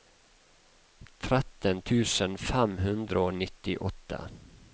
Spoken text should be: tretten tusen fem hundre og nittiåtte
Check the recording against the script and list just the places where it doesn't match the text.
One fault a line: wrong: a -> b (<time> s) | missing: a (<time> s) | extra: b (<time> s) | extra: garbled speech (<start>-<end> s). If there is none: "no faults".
no faults